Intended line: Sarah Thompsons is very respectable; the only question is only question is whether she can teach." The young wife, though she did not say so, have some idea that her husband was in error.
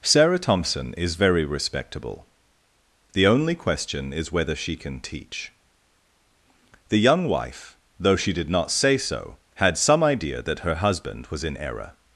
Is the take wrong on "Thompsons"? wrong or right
wrong